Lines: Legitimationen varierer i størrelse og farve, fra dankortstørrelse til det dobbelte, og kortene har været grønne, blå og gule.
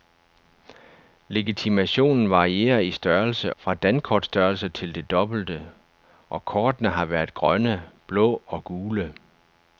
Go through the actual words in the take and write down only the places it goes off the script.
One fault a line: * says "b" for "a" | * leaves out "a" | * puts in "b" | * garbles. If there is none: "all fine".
* leaves out "og farve"